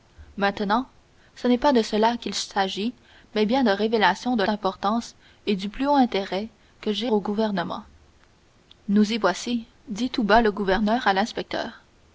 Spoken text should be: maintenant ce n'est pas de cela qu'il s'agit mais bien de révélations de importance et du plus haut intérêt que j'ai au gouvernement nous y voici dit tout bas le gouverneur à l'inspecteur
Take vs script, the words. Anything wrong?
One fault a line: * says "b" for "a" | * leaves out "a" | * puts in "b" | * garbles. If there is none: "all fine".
all fine